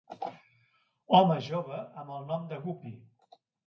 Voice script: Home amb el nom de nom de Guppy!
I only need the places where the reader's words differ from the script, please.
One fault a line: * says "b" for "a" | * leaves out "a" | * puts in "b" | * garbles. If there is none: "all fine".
* puts in "jove"
* leaves out "nom de"